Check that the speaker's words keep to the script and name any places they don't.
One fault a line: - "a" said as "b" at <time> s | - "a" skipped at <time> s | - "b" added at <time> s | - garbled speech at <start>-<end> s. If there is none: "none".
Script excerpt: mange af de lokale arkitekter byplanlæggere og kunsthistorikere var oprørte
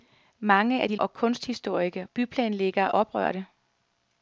- "lokale arkitekter byplanlæggere" skipped at 0.9 s
- "var" said as "byplanlæggere" at 2.1 s